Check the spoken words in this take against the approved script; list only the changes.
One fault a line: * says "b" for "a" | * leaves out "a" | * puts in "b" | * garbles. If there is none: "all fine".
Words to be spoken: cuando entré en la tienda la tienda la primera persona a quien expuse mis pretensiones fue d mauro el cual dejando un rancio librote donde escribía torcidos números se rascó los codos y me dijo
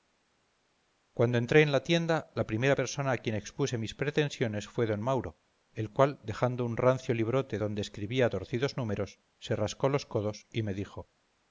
* leaves out "tienda la"